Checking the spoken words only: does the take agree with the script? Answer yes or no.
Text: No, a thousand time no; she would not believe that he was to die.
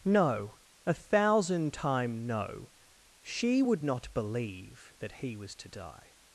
yes